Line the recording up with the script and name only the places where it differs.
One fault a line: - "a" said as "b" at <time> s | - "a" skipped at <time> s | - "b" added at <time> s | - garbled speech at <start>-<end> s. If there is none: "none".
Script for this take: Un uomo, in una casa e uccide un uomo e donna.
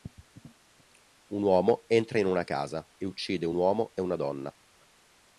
- "entra" added at 1.9 s
- "una" added at 4.0 s